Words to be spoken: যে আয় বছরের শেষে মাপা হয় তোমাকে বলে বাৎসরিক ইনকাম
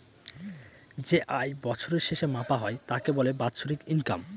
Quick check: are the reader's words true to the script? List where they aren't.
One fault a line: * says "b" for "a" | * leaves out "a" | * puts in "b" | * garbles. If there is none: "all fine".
* says "তাকে" for "তোমাকে"